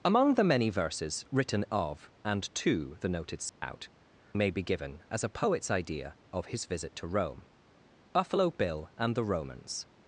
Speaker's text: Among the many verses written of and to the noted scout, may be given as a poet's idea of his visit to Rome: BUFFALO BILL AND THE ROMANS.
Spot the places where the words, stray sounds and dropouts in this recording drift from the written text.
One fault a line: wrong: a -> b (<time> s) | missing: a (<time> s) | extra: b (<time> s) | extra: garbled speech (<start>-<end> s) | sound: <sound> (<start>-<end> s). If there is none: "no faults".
sound: dropout (3.5-3.6 s)